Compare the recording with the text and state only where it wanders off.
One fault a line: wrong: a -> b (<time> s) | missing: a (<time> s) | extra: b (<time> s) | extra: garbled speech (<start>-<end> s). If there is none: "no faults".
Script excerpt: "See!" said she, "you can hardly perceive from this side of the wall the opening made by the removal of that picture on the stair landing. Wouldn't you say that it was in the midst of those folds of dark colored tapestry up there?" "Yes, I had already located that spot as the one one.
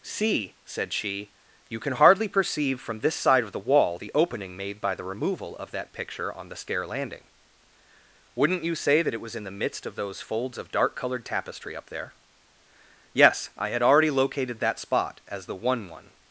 no faults